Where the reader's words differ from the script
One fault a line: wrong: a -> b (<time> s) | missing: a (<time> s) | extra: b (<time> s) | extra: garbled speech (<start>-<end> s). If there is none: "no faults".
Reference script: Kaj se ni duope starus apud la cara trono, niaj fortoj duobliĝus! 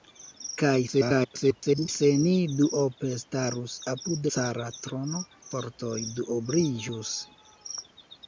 extra: garbled speech (0.9-1.9 s)
missing: la (4.3 s)
missing: niaj (5.3 s)